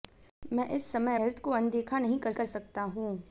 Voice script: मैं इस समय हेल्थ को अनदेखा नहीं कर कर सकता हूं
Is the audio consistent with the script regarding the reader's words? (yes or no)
yes